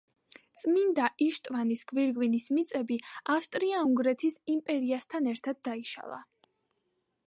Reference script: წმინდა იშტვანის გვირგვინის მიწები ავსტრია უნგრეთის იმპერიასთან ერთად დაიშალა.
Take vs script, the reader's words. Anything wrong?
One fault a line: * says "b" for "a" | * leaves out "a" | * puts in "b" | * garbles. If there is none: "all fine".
all fine